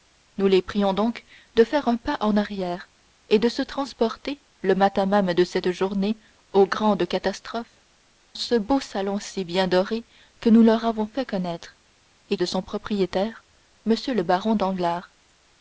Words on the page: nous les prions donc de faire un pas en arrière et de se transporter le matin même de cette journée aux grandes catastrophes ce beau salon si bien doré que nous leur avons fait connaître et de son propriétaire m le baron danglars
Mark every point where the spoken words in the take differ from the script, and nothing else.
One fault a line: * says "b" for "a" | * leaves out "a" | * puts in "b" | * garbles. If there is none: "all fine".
all fine